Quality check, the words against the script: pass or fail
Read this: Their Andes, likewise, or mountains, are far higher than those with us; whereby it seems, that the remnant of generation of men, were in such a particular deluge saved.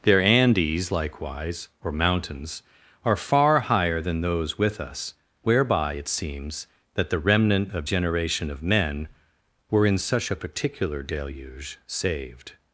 pass